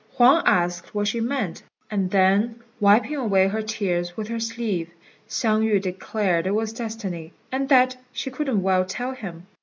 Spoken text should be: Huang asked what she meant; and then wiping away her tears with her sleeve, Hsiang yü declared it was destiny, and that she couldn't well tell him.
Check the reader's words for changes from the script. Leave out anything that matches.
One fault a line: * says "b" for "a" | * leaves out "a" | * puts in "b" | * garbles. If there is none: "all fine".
all fine